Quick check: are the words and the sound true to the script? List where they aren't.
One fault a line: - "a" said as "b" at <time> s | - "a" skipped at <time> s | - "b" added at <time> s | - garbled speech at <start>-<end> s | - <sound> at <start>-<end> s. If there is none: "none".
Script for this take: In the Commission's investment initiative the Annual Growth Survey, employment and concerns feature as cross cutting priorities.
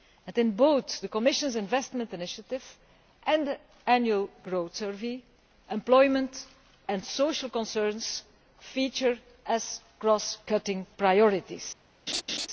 - "both" added at 0.5 s
- "and" added at 3.2 s
- "social" added at 7.0 s
- laugh at 12.1-12.5 s